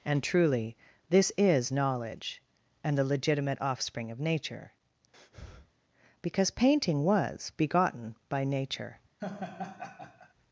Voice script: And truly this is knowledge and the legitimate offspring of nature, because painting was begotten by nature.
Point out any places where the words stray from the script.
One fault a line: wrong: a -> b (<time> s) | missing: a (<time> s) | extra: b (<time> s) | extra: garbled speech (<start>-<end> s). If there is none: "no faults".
no faults